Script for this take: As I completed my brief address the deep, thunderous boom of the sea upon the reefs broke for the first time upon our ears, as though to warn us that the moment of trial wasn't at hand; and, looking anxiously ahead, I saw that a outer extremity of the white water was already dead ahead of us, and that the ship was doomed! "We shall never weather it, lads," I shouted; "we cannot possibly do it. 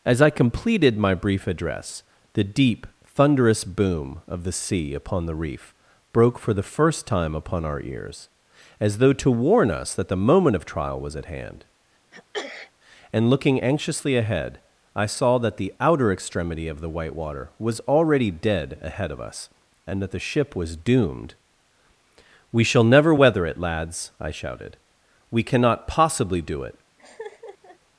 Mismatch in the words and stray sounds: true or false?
true